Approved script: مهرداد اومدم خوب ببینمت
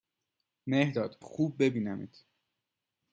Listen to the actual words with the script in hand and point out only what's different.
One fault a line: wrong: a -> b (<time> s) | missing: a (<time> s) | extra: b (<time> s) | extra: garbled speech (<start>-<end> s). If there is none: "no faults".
missing: اومدم (1.2 s)